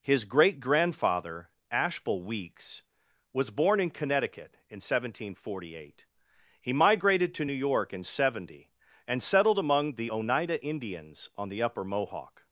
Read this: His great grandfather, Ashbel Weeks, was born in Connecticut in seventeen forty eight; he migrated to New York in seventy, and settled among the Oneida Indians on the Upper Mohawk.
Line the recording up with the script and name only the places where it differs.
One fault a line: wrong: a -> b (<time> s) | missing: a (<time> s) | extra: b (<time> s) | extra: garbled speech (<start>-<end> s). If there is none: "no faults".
no faults